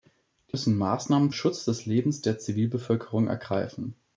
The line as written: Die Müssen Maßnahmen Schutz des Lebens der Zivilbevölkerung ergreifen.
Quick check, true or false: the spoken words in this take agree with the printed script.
true